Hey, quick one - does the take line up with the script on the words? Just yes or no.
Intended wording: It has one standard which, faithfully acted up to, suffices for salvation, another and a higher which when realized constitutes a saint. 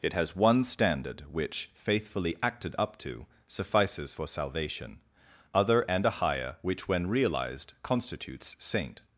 no